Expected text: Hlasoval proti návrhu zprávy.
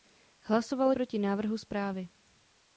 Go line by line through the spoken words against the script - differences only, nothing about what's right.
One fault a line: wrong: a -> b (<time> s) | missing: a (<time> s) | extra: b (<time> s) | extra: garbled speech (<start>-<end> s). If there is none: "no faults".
no faults